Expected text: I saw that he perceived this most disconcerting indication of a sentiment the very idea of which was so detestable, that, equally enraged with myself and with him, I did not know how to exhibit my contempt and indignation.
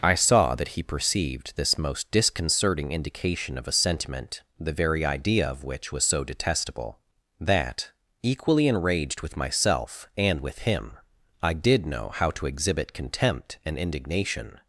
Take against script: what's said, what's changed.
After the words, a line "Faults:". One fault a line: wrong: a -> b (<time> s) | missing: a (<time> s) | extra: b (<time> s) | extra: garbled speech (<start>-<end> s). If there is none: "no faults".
I saw that he perceived this most disconcerting indication of a sentiment the very idea of which was so detestable, that, equally enraged with myself and with him, I did know how to exhibit contempt and indignation.
Faults:
missing: not (11.9 s)
missing: my (12.9 s)